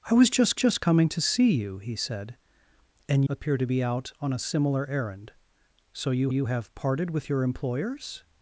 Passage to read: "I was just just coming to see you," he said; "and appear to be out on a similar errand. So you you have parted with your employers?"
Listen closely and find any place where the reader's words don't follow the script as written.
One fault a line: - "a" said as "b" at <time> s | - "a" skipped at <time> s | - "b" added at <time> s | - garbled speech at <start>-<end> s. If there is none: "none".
none